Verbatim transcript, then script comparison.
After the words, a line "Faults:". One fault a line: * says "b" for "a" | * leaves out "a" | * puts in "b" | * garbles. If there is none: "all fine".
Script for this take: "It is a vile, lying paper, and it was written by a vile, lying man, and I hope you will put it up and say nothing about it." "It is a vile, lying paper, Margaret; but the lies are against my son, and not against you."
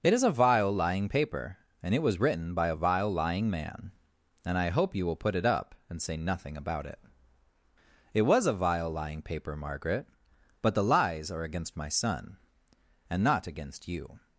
"It is a vile, lying paper, and it was written by a vile, lying man, and I hope you will put it up and say nothing about it." "It was a vile, lying paper, Margaret; but the lies are against my son, and not against you."
Faults:
* says "was" for "is"